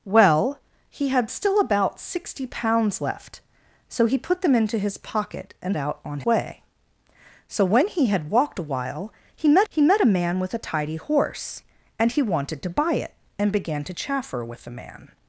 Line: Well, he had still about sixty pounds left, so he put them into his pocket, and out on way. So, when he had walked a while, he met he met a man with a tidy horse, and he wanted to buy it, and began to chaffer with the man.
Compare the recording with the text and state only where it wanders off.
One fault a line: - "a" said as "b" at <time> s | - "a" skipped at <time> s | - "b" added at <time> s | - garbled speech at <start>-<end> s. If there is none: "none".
none